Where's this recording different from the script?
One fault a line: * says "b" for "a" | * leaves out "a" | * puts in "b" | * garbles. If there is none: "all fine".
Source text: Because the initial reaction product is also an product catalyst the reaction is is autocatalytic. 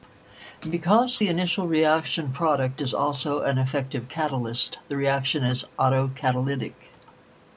* says "effective" for "product"
* leaves out "is"